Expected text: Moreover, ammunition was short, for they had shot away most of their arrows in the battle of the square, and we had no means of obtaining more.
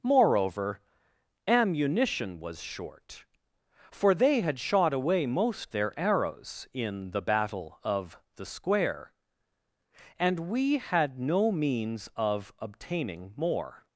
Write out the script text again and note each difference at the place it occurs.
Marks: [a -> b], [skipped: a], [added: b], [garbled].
Moreover, ammunition was short, for they had shot away most [skipped: of] their arrows in the battle of the square, and we had no means of obtaining more.